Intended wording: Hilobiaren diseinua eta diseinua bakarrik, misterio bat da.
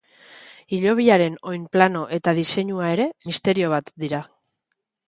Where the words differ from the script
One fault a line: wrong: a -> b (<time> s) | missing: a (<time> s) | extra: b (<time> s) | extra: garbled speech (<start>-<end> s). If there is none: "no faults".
wrong: diseinua -> oinplano (1.5 s)
wrong: bakarrik -> ere (3.0 s)
wrong: da -> dira (4.1 s)